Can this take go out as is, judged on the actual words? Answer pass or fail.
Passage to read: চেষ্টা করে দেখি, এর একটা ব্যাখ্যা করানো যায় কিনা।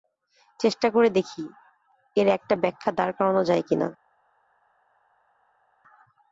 fail